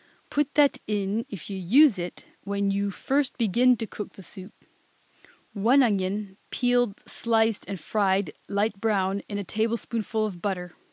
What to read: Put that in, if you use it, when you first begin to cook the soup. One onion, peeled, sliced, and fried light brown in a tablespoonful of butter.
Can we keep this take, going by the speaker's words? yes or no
yes